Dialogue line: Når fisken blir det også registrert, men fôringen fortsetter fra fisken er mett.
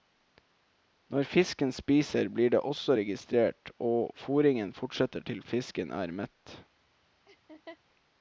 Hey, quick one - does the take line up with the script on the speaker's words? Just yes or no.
no